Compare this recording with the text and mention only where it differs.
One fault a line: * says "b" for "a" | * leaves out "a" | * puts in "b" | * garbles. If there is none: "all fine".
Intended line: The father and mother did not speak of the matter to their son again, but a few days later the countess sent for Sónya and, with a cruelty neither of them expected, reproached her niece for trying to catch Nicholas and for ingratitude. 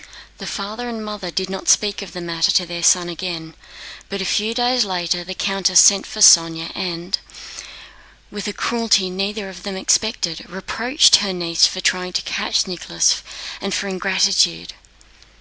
all fine